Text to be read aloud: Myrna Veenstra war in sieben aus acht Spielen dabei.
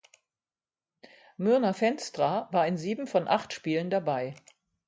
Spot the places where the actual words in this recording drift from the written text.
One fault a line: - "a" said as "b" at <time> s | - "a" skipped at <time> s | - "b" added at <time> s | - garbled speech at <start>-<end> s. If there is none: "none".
- "aus" said as "von" at 3.0 s